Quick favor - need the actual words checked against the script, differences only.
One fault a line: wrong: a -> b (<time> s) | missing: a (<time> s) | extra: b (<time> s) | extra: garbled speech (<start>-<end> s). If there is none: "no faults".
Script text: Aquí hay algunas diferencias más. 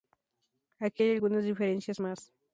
no faults